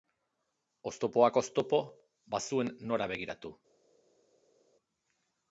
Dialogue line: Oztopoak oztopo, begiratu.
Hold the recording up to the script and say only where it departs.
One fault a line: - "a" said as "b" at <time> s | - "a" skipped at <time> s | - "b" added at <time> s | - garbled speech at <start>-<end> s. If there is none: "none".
- "bazuen nora" added at 2.4 s